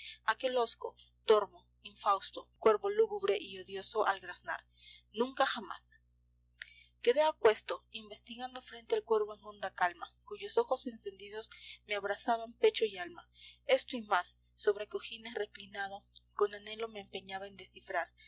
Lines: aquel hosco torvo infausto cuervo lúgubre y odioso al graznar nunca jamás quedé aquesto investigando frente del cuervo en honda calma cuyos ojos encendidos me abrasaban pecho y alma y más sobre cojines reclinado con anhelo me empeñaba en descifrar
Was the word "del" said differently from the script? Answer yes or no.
yes